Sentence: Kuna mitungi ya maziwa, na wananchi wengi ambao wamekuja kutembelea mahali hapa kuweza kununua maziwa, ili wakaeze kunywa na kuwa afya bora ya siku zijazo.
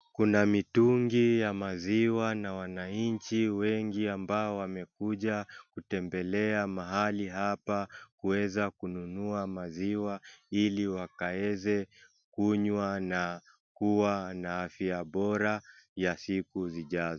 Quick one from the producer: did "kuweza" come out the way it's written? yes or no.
yes